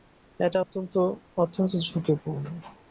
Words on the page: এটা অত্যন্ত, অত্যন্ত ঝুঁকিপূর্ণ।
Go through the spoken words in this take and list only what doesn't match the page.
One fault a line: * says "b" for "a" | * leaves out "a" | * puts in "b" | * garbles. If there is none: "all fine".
all fine